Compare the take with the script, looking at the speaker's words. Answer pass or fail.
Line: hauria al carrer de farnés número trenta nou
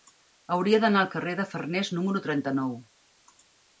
fail